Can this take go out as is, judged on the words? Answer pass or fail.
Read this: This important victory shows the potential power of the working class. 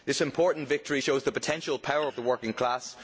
pass